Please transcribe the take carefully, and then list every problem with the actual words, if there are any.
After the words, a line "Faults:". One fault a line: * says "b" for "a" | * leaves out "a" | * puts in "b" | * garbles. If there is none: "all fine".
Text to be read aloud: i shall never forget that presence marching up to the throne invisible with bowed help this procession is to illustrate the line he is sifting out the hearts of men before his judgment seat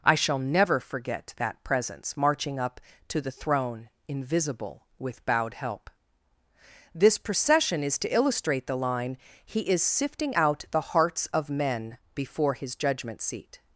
i shall never forget that presence marching up to the throne invisible with bowed help this procession is to illustrate the line he is sifting out the hearts of men before his judgment seat
Faults:
all fine